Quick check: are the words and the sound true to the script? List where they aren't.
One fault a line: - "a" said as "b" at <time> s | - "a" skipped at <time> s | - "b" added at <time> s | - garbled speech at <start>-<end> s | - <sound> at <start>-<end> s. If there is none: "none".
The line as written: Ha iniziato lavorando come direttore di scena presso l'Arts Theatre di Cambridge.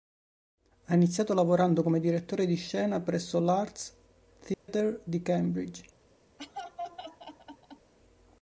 - dropout at 4.5-4.7 s
- laugh at 6.4-7.9 s